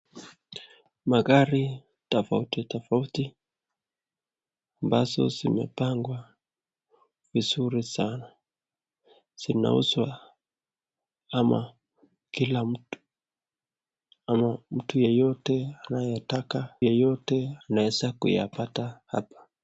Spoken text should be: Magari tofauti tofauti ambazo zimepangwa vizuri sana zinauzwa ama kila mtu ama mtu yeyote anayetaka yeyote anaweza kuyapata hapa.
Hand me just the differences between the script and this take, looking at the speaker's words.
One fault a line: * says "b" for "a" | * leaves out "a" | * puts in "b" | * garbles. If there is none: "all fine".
all fine